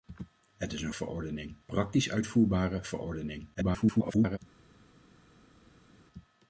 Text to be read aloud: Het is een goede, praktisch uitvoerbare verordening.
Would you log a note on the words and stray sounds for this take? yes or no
yes